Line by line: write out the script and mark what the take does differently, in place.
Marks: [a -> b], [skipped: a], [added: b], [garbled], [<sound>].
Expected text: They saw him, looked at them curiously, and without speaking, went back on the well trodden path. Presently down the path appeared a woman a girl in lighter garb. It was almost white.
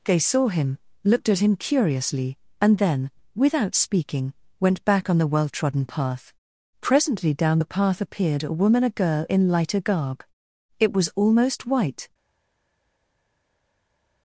They saw him, looked at [them -> him] curiously, and [added: then] without speaking, went back on the well trodden path. Presently down the path appeared a woman a girl in lighter garb. It was almost white.